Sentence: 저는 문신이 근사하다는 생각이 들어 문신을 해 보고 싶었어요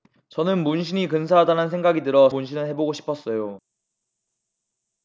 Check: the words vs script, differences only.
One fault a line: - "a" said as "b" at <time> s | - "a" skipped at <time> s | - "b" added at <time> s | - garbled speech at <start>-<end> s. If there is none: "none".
none